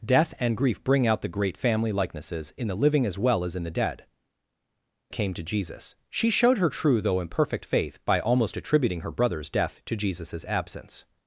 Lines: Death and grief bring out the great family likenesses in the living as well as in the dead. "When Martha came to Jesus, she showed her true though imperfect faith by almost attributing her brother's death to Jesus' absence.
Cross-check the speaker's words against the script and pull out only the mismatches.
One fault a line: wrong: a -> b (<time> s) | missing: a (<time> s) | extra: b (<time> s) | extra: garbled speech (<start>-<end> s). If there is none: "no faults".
missing: When Martha (4.0 s)